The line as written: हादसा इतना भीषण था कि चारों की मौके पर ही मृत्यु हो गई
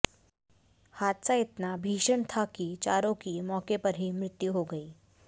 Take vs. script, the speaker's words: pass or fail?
pass